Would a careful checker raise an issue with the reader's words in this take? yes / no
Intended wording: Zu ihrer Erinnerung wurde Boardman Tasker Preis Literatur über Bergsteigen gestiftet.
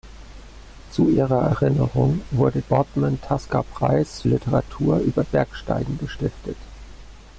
no